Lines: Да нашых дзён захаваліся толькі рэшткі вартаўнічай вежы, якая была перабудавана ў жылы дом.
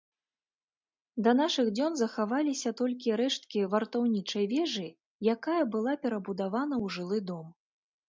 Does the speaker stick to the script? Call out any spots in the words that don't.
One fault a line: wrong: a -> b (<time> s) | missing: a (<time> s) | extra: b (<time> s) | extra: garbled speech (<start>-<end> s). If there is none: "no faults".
no faults